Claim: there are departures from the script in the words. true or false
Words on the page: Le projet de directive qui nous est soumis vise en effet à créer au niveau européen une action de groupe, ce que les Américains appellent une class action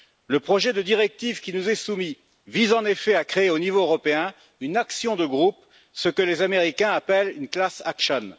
false